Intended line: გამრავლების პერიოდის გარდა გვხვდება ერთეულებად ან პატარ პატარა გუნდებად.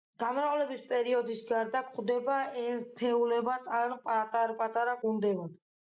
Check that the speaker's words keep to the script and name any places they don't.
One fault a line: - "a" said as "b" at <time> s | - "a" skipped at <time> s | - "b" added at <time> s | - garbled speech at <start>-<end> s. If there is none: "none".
none